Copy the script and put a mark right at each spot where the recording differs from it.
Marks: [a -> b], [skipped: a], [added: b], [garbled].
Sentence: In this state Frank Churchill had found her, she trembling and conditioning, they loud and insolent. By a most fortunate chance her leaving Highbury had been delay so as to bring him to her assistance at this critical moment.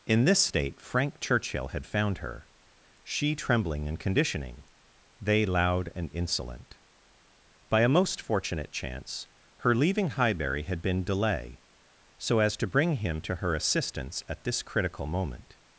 In this state Frank Churchill had found her, she trembling and conditioning, they loud and insolent. By a most fortunate chance her leaving Highbury had been delay so as to bring him to her assistance at this critical moment.